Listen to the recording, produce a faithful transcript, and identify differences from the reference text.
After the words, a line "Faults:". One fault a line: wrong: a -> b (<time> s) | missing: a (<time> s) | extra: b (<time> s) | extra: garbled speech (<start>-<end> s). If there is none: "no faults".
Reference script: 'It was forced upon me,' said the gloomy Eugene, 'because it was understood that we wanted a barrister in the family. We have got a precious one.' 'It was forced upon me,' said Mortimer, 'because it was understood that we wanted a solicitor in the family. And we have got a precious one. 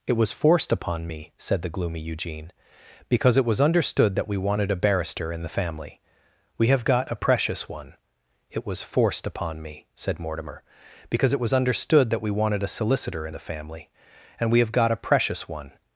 'It was forced upon me,' said the gloomy Eugene, 'because it was understood that we wanted a barrister in the family. We have got a precious one.' 'It was forced upon me,' said Mortimer, 'because it was understood that we wanted a solicitor in the family. And we have got a precious one.
Faults:
no faults